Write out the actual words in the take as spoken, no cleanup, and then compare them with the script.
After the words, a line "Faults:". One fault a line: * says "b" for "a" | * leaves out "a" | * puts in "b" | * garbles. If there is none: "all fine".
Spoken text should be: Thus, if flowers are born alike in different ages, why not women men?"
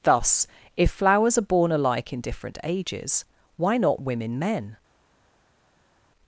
Thus, if flowers are born alike in different ages, why not women men?"
Faults:
all fine